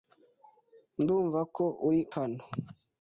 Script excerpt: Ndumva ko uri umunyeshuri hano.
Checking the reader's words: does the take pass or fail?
fail